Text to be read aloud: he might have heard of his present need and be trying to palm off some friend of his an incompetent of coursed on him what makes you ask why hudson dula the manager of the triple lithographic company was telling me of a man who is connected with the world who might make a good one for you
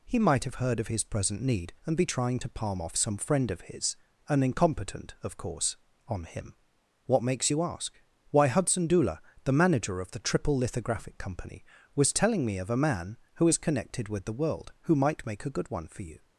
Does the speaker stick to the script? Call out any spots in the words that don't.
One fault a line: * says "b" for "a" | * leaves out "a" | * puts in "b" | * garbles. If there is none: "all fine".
* says "course" for "coursed"